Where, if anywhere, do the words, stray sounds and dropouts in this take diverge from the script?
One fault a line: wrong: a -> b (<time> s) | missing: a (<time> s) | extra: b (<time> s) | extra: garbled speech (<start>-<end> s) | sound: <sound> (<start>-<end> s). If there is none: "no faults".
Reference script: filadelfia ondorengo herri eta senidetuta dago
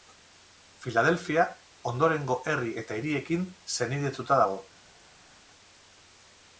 extra: hiriekin (3.0 s)